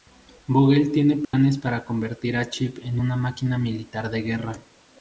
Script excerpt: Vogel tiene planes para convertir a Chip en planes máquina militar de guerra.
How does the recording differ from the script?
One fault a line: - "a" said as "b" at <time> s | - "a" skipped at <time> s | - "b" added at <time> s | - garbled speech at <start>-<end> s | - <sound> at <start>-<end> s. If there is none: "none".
- dropout at 1.2-1.3 s
- "planes" said as "una" at 3.0 s